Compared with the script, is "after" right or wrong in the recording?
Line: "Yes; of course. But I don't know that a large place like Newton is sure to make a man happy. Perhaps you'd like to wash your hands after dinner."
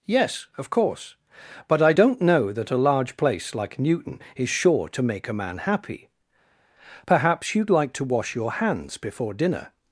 wrong